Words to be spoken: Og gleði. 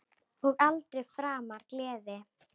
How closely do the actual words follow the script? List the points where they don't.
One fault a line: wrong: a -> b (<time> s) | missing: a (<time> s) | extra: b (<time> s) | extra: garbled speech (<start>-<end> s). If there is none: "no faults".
extra: aldrei framar (0.6 s)